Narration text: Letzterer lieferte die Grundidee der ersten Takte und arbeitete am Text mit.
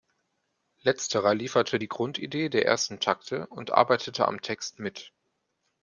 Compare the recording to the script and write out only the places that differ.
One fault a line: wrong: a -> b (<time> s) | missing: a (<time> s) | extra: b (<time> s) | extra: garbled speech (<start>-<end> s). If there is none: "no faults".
no faults